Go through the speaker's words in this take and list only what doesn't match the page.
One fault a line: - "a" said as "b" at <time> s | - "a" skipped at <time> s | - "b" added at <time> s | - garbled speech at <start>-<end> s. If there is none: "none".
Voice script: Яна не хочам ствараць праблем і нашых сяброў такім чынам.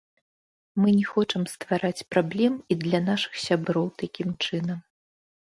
- "Яна" said as "Мы" at 0.8 s
- "для" added at 2.9 s